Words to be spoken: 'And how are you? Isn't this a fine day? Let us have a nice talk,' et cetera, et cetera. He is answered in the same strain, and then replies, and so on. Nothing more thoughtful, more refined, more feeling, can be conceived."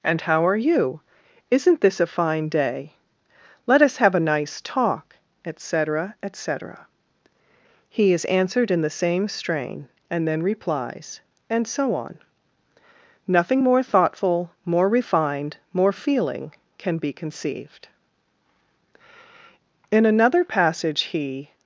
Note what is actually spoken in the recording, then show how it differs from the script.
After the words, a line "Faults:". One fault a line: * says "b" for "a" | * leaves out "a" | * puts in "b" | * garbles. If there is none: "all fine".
'And how are you? Isn't this a fine day? Let us have a nice talk,' et cetera, et cetera. He is answered in the same strain, and then replies, and so on. Nothing more thoughtful, more refined, more feeling, can be conceived." In another passage he
Faults:
* puts in "In another passage he"